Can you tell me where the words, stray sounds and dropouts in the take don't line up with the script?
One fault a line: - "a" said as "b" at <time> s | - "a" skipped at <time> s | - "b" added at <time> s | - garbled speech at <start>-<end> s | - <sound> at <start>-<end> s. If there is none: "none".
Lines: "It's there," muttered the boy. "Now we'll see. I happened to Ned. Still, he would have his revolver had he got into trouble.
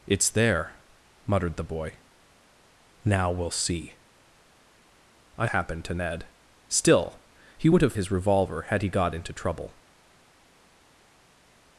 none